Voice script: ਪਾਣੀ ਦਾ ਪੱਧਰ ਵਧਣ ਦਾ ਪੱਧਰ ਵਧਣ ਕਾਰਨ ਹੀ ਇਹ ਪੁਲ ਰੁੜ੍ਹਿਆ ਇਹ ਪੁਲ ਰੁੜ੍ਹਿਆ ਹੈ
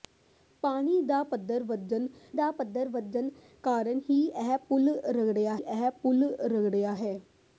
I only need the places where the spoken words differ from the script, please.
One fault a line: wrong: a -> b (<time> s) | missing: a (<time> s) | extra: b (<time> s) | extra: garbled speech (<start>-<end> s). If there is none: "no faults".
no faults